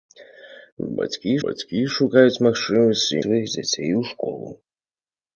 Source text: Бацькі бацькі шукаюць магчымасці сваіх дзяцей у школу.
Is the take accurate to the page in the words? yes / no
yes